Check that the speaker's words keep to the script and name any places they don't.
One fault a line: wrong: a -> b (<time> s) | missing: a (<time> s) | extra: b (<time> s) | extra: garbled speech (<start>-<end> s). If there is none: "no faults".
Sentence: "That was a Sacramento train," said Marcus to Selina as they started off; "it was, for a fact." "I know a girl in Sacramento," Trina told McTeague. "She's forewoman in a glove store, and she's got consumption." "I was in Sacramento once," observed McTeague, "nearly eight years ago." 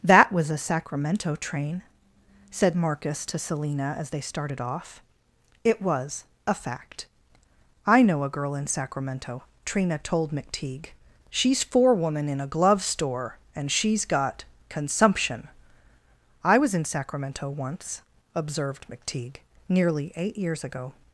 missing: for (6.2 s)